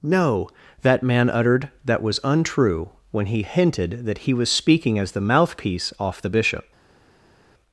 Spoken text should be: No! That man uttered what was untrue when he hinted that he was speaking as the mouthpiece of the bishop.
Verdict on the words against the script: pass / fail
fail